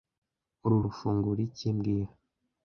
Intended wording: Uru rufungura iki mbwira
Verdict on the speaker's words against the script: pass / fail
pass